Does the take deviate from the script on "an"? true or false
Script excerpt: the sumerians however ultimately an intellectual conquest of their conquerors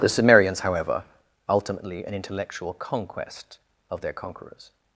false